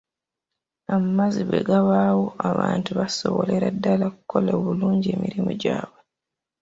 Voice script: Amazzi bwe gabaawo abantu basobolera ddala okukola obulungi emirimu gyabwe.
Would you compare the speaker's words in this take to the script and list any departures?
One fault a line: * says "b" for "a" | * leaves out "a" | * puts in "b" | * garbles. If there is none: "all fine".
all fine